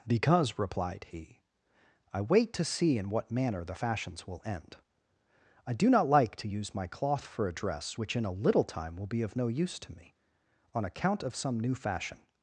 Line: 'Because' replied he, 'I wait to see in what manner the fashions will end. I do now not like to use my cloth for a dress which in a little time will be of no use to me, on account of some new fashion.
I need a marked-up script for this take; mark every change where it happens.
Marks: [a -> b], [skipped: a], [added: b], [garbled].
'Because' replied he, 'I wait to see in what manner the fashions will end. I do [skipped: now] not like to use my cloth for a dress which in a little time will be of no use to me, on account of some new fashion.